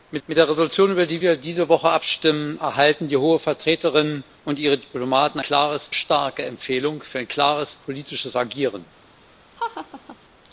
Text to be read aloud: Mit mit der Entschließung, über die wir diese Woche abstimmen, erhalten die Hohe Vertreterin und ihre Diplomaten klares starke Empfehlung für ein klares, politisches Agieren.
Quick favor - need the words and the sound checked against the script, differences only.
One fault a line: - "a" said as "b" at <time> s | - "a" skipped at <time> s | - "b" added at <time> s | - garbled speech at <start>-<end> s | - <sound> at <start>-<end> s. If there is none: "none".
- laugh at 9.6-10.2 s